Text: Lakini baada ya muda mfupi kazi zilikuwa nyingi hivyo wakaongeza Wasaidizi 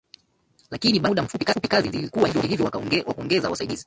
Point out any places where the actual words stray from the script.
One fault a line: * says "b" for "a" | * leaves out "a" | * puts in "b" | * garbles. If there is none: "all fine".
all fine